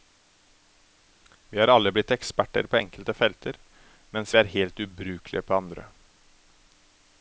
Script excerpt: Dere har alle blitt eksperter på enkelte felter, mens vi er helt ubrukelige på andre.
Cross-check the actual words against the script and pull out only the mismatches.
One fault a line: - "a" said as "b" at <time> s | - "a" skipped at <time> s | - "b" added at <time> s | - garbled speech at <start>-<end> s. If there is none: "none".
- "Dere" said as "Vi" at 1.5 s